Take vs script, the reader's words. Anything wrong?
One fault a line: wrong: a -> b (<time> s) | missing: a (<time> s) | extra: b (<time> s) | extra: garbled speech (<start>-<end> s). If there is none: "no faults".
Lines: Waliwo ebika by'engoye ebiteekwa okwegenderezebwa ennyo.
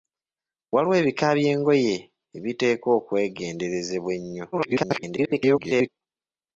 extra: garbled speech (4.5-5.9 s)